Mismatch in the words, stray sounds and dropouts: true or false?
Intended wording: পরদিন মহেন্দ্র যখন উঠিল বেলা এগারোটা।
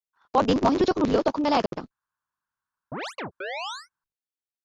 true